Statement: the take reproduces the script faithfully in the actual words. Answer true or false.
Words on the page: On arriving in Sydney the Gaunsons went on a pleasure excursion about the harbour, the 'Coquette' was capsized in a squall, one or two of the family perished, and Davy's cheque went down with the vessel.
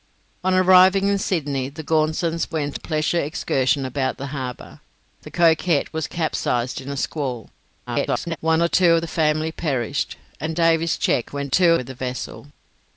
false